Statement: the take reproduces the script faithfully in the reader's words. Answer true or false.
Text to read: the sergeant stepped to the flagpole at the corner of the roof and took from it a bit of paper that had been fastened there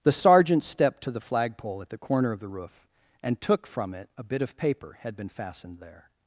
false